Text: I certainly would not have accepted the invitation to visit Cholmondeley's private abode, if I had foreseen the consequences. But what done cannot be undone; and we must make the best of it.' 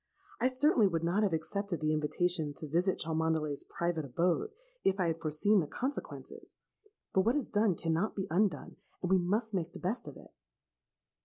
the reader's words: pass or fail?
fail